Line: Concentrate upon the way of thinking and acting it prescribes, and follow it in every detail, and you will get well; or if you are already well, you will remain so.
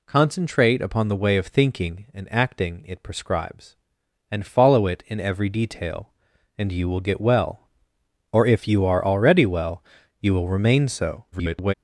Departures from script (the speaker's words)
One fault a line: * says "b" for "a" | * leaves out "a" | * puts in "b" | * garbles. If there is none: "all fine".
* garbles